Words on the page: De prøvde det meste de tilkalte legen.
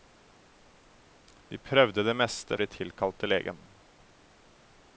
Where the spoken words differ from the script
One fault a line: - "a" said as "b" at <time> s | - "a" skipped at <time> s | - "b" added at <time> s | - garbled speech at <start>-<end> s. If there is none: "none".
none